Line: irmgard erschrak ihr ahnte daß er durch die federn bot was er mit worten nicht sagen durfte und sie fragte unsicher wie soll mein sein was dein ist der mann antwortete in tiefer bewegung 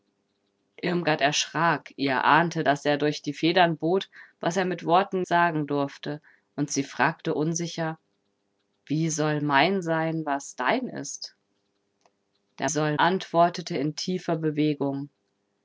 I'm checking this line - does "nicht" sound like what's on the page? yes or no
no